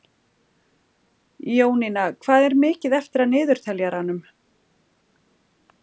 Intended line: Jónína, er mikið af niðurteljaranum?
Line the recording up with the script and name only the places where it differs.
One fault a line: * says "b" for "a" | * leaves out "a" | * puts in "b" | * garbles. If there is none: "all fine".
* puts in "hvað"
* puts in "eftir"